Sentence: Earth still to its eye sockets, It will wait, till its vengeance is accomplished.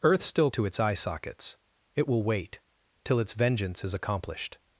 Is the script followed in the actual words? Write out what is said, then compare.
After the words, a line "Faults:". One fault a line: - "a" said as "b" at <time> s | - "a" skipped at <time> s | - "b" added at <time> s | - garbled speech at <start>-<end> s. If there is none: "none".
Earth still to its eye sockets, It will wait, till its vengeance is accomplished.
Faults:
none